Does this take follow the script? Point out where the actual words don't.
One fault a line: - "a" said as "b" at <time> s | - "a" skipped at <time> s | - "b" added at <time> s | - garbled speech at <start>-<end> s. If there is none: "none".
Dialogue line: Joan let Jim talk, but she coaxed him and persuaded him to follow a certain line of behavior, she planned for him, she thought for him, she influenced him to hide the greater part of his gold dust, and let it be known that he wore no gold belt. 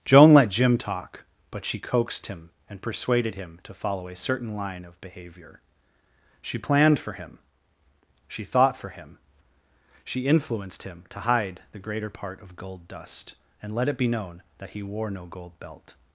- "his" skipped at 12.6 s